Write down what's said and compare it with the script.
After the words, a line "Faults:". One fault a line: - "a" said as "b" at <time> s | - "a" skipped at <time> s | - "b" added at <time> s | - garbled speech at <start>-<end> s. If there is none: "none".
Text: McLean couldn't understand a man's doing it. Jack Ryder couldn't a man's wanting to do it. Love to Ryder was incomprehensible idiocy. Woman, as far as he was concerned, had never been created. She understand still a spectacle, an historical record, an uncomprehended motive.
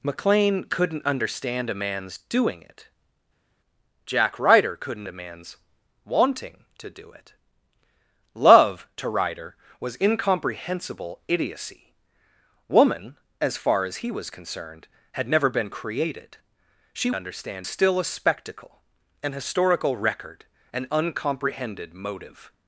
McLean couldn't understand a man's doing it. Jack Ryder couldn't a man's wanting to do it. Love to Ryder was incomprehensible idiocy. Woman, as far as he was concerned, had never been created. She understand still a spectacle, an historical record, an uncomprehended motive.
Faults:
none